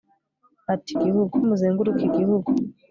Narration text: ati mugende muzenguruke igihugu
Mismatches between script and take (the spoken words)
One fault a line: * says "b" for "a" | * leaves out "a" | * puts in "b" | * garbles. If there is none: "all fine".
* says "igihugu" for "mugende"